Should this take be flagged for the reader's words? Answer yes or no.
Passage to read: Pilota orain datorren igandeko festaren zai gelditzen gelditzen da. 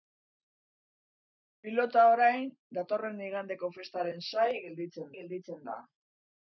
no